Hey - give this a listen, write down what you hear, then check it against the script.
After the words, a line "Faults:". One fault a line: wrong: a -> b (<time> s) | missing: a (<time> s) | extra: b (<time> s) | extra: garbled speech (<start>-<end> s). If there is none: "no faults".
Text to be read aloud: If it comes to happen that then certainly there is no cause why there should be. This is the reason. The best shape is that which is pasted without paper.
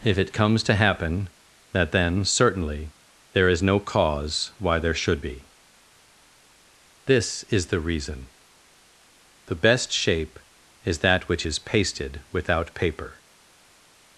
If it comes to happen that then certainly there is no cause why there should be. This is the reason. The best shape is that which is pasted without paper.
Faults:
no faults